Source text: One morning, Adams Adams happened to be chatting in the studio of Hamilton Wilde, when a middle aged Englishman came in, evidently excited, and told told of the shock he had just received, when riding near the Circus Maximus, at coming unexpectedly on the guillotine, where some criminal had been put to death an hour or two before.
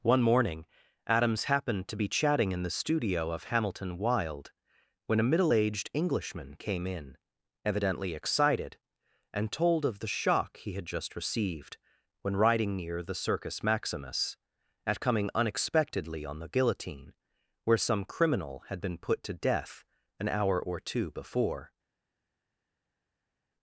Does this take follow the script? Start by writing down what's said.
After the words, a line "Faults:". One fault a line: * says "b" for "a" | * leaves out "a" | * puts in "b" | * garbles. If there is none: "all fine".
One morning, Adams happened to be chatting in the studio of Hamilton Wilde, when a middle aged Englishman came in, evidently excited, and told of the shock he had just received, when riding near the Circus Maximus, at coming unexpectedly on the guillotine, where some criminal had been put to death an hour or two before.
Faults:
* leaves out "Adams"
* leaves out "told"